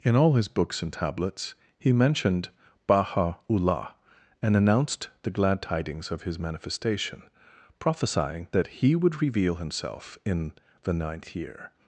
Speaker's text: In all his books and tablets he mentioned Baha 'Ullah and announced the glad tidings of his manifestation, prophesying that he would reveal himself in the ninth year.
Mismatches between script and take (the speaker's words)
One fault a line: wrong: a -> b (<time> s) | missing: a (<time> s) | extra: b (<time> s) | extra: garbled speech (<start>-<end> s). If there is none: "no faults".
no faults